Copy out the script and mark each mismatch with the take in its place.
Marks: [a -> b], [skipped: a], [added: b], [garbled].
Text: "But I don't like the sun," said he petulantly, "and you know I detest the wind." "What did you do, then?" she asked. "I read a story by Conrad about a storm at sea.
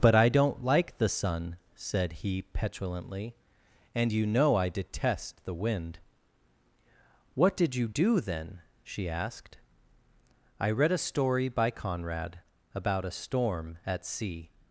"But I don't like the sun," said he petulantly, "and you know I detest the wind." "What did you do, then?" she asked. "I read a story by Conrad about a storm at sea.